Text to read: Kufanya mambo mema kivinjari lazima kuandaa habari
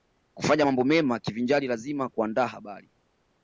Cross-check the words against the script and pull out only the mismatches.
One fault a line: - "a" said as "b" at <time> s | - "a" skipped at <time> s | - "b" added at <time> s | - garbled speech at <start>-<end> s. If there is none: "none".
none